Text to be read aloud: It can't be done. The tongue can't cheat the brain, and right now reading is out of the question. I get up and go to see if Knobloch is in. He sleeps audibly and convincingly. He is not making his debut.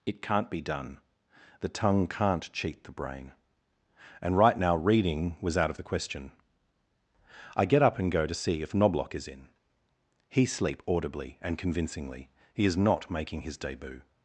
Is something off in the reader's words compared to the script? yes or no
yes